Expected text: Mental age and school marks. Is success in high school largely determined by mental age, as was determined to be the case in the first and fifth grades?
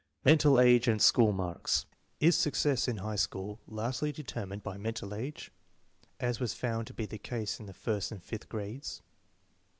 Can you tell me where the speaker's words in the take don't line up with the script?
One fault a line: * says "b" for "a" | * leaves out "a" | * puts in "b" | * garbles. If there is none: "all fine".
* says "found" for "determined"